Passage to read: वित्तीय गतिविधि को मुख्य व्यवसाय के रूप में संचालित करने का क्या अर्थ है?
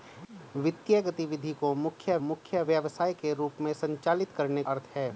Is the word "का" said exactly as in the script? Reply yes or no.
no